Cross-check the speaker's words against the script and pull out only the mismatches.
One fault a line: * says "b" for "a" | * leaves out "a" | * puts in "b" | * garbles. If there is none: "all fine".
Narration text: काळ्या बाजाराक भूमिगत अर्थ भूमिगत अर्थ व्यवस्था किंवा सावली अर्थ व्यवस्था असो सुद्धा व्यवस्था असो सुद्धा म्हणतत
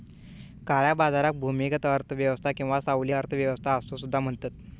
* leaves out "भूमिगत अर्थ"
* leaves out "व्यवस्था असो सुद्धा"